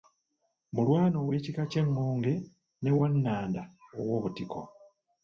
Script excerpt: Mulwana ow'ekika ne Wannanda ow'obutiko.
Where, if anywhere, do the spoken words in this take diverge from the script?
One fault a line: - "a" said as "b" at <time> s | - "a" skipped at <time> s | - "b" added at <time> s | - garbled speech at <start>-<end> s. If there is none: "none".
- "ky'Engonge" added at 1.7 s